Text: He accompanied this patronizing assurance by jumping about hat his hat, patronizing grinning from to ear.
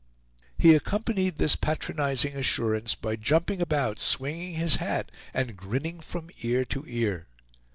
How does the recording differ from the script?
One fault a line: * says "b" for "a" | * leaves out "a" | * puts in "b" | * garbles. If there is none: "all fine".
* says "swinging" for "hat"
* says "and" for "patronizing"
* puts in "ear"